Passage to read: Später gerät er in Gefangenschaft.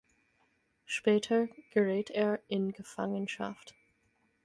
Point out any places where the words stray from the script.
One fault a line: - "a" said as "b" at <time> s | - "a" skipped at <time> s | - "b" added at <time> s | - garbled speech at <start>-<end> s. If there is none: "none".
none